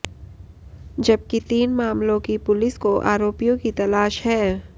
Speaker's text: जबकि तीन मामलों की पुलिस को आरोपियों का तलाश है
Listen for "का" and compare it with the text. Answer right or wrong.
wrong